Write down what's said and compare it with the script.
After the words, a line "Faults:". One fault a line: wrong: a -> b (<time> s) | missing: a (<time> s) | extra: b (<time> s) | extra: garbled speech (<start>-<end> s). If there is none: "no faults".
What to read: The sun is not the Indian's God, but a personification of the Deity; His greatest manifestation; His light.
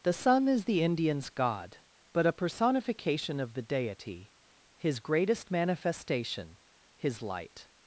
The sun is the Indian's God, but a personification of the Deity; His greatest manifestation; His light.
Faults:
missing: not (0.7 s)